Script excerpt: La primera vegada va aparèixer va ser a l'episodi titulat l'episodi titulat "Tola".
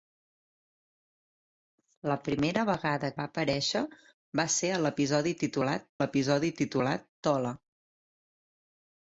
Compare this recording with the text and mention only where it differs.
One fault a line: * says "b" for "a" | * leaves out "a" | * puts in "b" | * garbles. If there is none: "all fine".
all fine